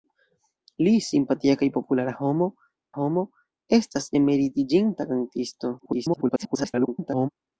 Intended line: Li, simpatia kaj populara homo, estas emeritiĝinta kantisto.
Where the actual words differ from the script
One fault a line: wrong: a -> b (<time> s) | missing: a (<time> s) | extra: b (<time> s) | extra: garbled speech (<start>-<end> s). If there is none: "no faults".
extra: homo (3.0 s)
extra: garbled speech (5.8-7.3 s)